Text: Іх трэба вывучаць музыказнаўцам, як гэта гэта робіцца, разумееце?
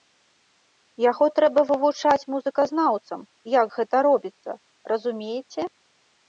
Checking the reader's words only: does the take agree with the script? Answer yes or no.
no